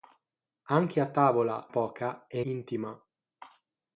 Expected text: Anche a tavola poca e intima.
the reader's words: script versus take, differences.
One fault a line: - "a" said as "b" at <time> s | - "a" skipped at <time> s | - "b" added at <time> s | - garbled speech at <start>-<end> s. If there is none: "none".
none